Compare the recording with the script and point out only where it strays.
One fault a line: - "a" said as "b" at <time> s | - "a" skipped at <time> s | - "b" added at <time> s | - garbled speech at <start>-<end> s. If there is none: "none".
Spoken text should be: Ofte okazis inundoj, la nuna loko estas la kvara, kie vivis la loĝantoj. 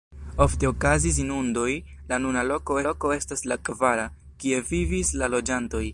- "loko" added at 2.9 s